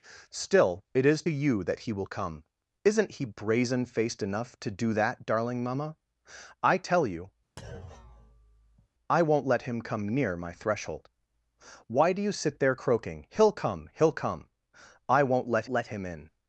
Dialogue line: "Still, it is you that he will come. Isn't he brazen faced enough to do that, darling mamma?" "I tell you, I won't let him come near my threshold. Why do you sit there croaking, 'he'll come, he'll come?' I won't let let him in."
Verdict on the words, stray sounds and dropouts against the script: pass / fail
fail